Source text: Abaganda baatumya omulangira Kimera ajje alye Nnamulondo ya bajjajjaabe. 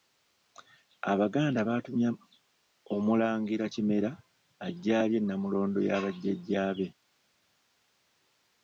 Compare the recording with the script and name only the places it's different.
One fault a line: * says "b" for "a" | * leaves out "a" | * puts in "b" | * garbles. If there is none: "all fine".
all fine